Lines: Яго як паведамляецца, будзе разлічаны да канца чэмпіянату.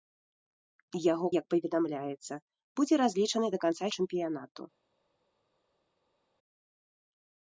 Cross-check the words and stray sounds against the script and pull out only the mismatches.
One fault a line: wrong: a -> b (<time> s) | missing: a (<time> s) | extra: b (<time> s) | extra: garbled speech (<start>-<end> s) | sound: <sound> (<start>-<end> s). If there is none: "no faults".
no faults